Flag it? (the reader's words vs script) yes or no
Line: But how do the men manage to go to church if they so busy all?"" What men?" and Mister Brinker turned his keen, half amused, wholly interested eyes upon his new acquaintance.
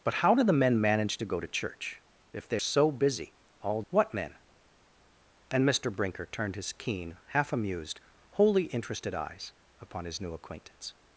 no